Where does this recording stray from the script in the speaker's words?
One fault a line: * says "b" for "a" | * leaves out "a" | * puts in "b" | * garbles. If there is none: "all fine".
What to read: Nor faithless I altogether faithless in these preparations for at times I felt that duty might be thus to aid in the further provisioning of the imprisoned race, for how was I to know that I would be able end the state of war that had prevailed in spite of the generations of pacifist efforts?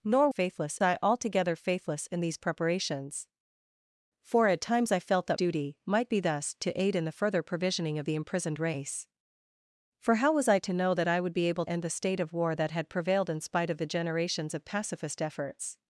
all fine